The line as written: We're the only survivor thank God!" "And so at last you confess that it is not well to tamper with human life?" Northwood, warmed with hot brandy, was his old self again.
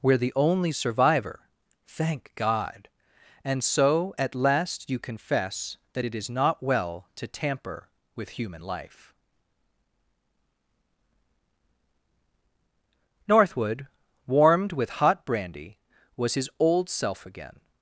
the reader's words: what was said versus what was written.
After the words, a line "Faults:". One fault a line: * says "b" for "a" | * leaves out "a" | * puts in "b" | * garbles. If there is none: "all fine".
We're the only survivor thank God!" "And so at last you confess that it is not well to tamper with human life?" Northwood, warmed with hot brandy, was his old self again.
Faults:
all fine